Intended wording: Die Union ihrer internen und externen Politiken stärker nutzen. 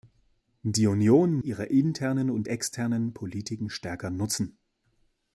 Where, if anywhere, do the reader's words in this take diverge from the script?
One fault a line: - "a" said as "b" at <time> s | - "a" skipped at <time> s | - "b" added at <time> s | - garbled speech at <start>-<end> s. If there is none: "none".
none